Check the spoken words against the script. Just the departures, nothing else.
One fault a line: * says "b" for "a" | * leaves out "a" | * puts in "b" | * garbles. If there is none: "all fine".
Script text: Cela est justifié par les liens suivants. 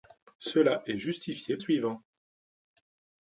* leaves out "par les liens"